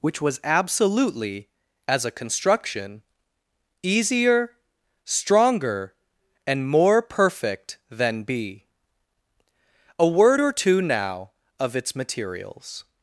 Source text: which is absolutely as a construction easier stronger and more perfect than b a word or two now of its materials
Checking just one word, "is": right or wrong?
wrong